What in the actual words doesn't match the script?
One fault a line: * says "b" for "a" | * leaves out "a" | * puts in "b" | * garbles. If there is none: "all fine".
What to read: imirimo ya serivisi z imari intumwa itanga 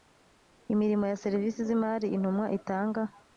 all fine